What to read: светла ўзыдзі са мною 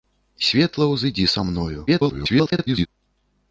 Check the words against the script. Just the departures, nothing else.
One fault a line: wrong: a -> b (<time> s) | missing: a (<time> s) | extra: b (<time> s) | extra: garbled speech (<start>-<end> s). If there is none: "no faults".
extra: garbled speech (1.9-2.9 s)